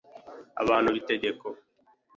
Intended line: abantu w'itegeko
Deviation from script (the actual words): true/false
false